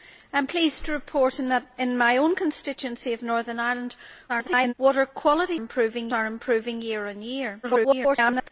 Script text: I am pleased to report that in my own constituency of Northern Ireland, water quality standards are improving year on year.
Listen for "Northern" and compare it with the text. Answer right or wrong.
right